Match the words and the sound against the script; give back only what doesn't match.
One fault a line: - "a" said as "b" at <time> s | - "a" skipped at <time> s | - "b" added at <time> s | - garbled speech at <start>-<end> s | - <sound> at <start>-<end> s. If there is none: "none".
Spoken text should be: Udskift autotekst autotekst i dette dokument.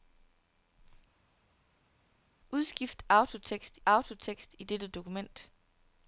none